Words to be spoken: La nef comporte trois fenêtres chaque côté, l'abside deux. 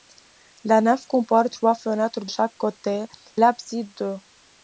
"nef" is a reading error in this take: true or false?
false